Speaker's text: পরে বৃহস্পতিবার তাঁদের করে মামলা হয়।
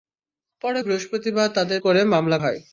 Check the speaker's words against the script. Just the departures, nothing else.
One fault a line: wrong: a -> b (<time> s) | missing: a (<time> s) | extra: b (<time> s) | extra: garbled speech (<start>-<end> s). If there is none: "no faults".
no faults